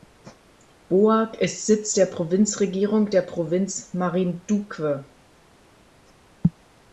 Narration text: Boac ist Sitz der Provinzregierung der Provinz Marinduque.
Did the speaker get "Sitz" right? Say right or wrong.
right